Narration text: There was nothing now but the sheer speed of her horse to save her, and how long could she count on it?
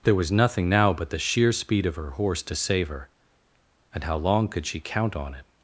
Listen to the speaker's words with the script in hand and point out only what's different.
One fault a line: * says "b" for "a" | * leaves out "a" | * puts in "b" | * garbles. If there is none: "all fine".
all fine